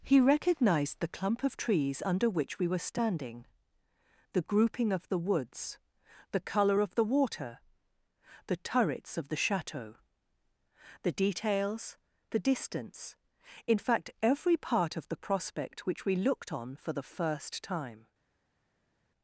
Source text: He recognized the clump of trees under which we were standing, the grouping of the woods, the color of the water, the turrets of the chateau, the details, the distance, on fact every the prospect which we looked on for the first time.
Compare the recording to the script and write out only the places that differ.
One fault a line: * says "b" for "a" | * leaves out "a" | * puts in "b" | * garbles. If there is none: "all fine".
* says "in" for "on"
* puts in "part of"